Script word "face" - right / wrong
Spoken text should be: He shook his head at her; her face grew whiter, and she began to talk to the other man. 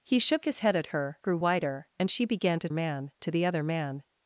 wrong